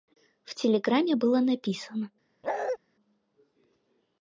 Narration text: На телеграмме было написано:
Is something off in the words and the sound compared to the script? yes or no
yes